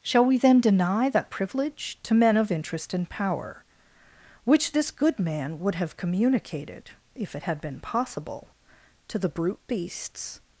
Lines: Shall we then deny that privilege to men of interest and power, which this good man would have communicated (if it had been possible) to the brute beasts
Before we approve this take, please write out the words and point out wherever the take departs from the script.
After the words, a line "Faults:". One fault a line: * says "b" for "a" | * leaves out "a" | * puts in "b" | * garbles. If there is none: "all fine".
Shall we then deny that privilege to men of interest and power, which this good man would have communicated (if it had been possible) to the brute beasts
Faults:
all fine